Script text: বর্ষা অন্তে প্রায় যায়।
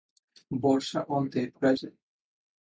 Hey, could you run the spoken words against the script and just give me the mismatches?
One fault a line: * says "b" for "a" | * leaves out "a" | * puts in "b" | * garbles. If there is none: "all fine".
all fine